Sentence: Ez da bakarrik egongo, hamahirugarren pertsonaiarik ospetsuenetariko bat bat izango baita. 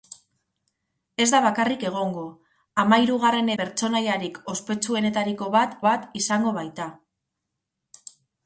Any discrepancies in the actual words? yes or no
no